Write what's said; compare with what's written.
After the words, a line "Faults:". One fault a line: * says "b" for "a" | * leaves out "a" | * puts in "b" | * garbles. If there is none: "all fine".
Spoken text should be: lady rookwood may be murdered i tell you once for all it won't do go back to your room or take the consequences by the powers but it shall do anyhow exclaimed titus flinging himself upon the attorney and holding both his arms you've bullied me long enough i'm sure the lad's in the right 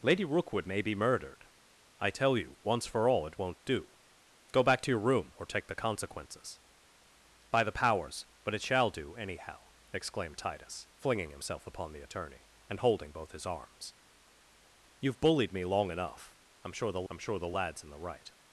lady rookwood may be murdered i tell you once for all it won't do go back to your room or take the consequences by the powers but it shall do anyhow exclaimed titus flinging himself upon the attorney and holding both his arms you've bullied me long enough i'm sure the i'm sure the lad's in the right
Faults:
* puts in "i'm sure the"